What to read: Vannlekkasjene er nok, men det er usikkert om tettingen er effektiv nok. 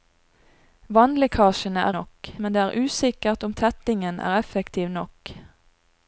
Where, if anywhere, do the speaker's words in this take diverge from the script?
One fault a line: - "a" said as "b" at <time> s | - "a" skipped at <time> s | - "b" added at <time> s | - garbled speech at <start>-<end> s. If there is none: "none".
none